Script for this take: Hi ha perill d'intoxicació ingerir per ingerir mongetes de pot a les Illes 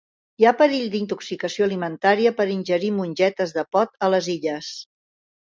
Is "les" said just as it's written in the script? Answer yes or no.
yes